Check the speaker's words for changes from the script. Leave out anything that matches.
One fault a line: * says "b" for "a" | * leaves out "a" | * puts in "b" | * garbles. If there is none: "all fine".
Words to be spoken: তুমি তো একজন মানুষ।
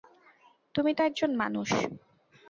all fine